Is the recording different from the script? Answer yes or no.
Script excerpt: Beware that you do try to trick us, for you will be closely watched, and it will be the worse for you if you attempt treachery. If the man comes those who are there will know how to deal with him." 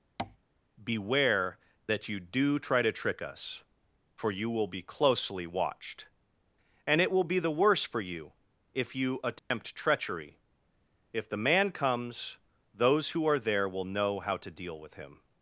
no